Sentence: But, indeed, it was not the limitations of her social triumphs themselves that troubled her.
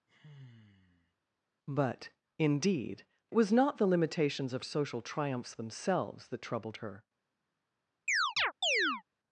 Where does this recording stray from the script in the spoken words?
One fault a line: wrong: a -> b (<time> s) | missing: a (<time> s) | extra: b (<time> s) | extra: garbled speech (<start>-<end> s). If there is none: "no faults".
missing: it (3.1 s)
missing: her (4.6 s)